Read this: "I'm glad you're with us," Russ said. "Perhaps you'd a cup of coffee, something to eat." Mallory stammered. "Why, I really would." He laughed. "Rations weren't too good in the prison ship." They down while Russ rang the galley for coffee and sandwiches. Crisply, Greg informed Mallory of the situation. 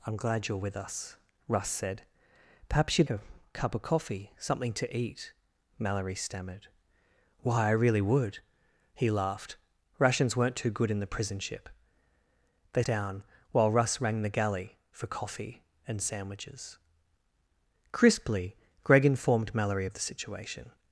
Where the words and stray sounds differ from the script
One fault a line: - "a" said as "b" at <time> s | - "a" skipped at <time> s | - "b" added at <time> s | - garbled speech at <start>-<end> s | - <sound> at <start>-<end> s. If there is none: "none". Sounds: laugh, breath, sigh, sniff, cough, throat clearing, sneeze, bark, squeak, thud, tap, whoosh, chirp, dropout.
none